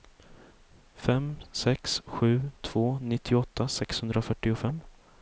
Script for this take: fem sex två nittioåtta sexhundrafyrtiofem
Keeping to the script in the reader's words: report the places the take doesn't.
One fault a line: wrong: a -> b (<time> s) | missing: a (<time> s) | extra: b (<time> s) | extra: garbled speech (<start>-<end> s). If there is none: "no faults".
extra: sju (2.0 s)